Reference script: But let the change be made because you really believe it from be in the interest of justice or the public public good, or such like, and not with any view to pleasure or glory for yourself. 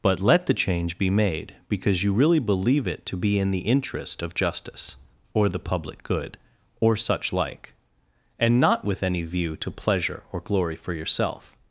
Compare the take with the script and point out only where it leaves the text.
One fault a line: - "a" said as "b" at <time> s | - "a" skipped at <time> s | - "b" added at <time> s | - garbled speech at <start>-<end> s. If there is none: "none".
- "from" said as "to" at 3.1 s
- "public" skipped at 6.0 s